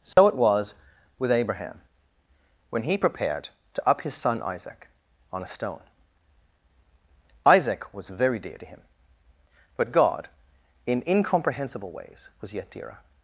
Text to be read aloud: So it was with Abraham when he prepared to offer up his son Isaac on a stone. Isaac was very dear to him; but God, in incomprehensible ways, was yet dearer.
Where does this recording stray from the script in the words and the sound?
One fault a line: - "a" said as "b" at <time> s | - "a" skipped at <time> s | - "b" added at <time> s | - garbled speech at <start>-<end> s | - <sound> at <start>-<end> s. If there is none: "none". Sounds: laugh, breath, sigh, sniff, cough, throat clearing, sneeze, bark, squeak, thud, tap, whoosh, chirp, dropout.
- dropout at 0.1-0.2 s
- "offer" skipped at 3.9 s